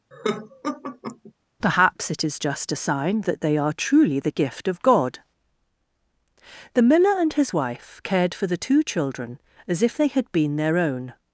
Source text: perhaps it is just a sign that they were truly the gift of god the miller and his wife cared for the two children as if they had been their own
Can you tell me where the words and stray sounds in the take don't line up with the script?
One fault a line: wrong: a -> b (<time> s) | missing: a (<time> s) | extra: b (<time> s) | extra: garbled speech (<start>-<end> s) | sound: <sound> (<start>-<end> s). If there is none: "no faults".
sound: laugh (0.1-1.3 s)
wrong: were -> are (3.5 s)